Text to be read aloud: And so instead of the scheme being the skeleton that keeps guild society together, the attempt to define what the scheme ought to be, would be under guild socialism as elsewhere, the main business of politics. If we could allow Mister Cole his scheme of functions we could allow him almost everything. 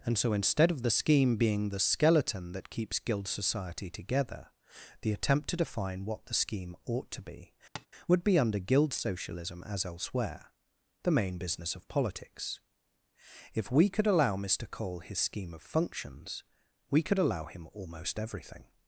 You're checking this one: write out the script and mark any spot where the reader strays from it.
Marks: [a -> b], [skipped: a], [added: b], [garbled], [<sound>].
And so instead of the scheme being the skeleton that keeps guild society together, the attempt to define what the scheme ought to be, [tap] would be under guild socialism as elsewhere, the main business of politics. If we could allow Mister Cole his scheme of functions we could allow him almost everything.